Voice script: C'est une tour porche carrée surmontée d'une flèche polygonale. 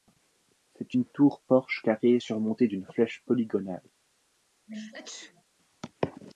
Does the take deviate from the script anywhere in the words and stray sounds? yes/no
yes